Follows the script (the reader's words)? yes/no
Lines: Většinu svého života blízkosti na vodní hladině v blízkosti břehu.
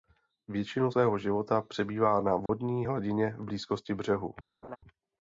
no